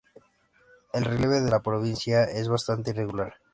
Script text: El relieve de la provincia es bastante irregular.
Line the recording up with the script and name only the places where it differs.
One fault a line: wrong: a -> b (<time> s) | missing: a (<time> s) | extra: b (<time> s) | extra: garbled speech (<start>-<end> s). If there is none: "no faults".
no faults